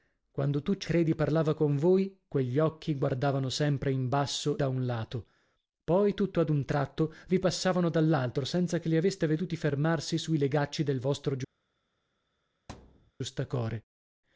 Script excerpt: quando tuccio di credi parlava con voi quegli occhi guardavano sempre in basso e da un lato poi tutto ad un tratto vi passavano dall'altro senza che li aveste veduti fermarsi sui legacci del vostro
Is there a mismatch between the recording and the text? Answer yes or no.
yes